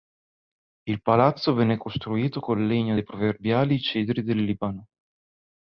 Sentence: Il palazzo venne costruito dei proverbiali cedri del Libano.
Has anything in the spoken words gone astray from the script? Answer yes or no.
yes